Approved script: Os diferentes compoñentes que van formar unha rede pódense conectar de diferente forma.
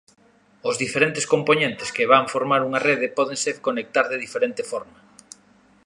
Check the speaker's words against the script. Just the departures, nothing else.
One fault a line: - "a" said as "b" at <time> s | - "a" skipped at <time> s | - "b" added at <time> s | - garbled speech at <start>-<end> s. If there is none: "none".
none